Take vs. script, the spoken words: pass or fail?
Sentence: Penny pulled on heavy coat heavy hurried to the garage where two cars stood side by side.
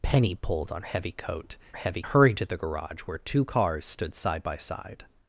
pass